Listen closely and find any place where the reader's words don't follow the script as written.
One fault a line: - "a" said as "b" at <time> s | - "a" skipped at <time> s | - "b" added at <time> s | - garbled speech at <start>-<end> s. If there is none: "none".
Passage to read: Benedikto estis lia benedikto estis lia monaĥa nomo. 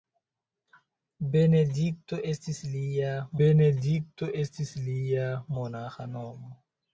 none